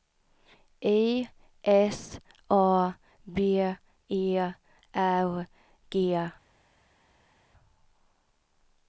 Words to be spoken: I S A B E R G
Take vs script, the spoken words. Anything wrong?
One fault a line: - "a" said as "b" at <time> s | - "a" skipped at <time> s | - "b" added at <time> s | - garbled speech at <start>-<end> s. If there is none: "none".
none